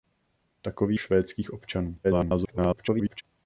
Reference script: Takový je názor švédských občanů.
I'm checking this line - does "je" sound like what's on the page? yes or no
no